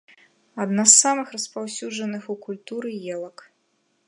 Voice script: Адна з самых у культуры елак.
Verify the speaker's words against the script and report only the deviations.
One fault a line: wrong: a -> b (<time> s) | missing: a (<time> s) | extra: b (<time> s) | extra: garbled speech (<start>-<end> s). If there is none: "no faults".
extra: распаўсюджаных (1.4 s)